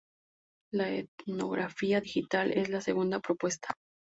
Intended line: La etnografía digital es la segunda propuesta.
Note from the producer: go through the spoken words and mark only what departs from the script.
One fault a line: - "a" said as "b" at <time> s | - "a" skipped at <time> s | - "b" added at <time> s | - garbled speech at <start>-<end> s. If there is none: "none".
none